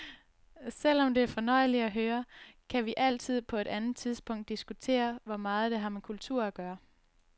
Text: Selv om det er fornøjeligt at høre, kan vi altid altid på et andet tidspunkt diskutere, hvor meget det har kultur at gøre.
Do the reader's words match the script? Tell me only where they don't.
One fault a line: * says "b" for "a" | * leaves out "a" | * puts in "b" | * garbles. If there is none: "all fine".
* leaves out "altid"
* puts in "med"